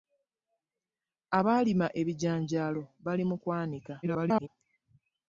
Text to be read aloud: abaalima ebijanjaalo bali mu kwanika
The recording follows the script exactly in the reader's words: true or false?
false